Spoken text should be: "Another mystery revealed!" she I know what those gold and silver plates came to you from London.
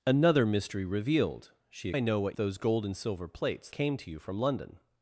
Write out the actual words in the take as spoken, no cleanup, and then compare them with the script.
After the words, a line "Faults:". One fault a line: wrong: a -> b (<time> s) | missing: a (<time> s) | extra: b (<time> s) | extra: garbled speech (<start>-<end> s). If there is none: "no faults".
"Another mystery revealed!" she I know what those gold and silver plates came to you from London.
Faults:
no faults